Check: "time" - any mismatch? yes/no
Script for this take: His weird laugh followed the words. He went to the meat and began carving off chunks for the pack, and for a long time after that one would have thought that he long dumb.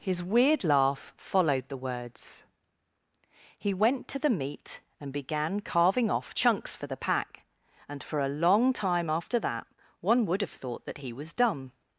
no